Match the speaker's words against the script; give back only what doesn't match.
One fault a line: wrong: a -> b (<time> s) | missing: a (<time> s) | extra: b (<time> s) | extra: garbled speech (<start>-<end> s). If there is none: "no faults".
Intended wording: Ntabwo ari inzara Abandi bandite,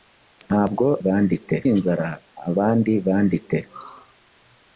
wrong: ari -> bandite (1.0 s)